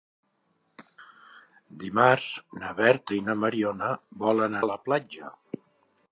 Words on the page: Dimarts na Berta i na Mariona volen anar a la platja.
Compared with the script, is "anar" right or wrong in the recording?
wrong